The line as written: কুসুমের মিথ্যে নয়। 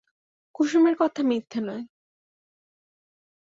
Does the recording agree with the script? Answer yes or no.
no